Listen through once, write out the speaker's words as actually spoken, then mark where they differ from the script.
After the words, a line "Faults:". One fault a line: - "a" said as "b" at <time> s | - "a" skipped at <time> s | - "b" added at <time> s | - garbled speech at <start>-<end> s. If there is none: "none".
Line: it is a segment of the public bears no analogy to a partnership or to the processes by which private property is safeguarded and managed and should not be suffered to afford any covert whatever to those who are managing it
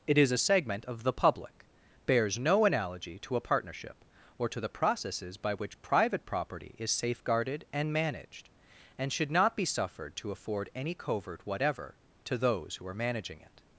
it is a segment of the public bears no analogy to a partnership or to the processes by which private property is safeguarded and managed and should not be suffered to afford any covert whatever to those who are managing it
Faults:
none